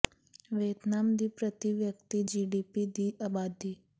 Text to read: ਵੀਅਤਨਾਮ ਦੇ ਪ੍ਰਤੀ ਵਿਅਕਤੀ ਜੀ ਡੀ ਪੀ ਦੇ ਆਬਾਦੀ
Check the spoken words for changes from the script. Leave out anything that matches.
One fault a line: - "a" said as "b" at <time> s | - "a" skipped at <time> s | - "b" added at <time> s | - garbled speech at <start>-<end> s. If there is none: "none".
- "ਦੇ" said as "ਦੀ" at 1.2 s
- "ਦੇ" said as "ਦੀ" at 2.9 s